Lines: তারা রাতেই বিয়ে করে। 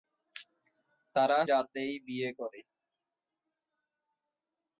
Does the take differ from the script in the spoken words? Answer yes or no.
no